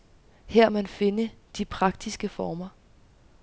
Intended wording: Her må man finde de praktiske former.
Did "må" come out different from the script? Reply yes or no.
yes